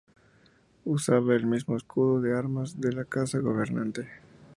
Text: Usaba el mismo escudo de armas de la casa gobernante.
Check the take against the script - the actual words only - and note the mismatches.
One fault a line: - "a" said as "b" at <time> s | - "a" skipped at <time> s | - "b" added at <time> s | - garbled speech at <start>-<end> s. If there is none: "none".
none